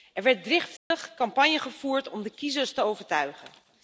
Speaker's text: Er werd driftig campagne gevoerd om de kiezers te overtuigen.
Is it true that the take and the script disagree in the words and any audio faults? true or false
true